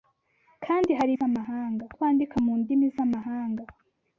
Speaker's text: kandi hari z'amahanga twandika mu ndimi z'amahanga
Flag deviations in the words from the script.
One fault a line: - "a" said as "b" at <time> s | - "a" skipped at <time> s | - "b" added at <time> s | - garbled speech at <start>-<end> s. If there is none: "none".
none